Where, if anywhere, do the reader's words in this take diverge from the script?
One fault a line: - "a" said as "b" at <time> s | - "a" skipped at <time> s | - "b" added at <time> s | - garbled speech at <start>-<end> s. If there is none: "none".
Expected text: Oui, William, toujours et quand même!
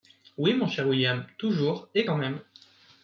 - "mon cher" added at 0.6 s